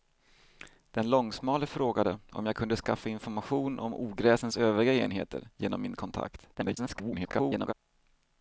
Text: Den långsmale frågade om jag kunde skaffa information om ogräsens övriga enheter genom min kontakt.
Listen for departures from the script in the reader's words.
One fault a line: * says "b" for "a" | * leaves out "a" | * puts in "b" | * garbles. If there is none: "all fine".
* garbles